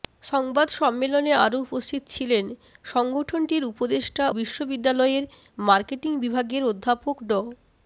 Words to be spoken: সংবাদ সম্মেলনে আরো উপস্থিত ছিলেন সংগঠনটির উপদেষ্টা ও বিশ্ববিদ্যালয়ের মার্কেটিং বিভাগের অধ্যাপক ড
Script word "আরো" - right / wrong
right